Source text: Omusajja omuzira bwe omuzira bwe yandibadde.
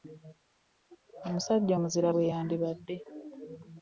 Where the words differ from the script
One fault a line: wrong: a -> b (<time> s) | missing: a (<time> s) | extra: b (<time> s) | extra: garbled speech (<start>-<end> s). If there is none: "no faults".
missing: omuzira bwe (2.3 s)